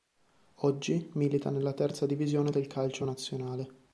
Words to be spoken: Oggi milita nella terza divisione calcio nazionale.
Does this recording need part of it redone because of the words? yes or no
yes